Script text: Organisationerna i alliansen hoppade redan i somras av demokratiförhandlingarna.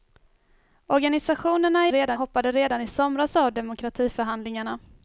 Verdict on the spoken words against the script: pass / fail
fail